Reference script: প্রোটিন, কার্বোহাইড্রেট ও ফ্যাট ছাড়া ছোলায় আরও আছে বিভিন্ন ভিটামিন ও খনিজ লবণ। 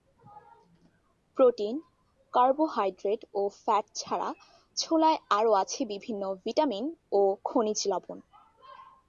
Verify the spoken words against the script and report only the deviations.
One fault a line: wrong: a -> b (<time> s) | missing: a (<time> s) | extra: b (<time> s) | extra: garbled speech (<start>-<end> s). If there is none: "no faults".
no faults